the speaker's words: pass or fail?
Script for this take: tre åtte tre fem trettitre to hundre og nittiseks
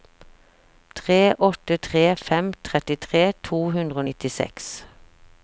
pass